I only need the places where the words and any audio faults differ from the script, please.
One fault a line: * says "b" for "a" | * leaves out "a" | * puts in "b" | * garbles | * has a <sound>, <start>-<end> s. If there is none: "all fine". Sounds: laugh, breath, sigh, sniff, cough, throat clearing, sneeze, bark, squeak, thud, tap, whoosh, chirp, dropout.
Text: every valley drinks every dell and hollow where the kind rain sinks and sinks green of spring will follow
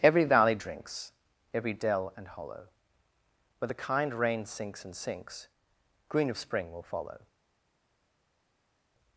all fine